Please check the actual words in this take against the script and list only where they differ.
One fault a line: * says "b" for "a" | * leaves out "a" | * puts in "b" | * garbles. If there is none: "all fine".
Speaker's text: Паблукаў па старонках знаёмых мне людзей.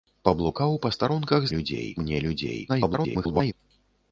* says "людзей" for "знаёмых"
* garbles